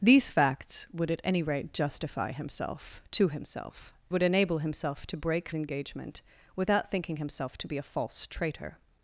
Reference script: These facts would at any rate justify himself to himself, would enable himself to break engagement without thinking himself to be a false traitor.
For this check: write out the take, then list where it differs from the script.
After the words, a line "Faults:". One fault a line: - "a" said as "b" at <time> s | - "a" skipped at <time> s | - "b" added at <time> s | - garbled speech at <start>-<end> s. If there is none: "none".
These facts would at any rate justify himself to himself, would enable himself to break engagement without thinking himself to be a false traitor.
Faults:
none